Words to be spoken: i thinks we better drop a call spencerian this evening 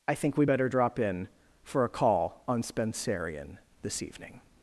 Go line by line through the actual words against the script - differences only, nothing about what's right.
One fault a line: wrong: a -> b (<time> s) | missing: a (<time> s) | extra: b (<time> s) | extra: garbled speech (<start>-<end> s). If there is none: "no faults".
wrong: thinks -> think (0.1 s)
extra: in for (1.0 s)
extra: on (2.5 s)